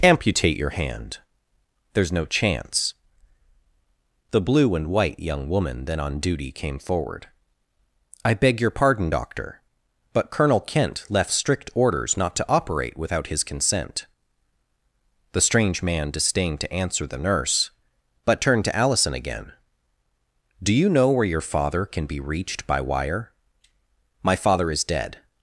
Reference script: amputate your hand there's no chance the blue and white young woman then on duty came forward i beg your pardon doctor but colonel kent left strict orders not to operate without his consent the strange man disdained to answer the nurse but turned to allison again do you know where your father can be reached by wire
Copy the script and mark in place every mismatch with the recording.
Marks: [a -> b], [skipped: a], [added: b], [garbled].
amputate your hand there's no chance the blue and white young woman then on duty came forward i beg your pardon doctor but colonel kent left strict orders not to operate without his consent the strange man disdained to answer the nurse but turned to allison again do you know where your father can be reached by wire [added: my father is dead]